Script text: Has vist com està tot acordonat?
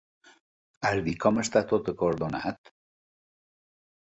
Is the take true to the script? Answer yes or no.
yes